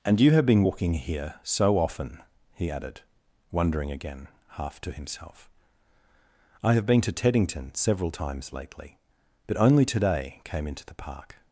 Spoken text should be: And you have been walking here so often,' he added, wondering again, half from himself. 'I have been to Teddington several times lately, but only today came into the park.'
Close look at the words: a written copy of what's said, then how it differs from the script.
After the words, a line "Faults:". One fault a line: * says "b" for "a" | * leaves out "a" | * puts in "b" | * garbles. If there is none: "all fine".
And you have been walking here so often,' he added, wondering again, half to himself. 'I have been to Teddington several times lately, but only today came into the park.'
Faults:
* says "to" for "from"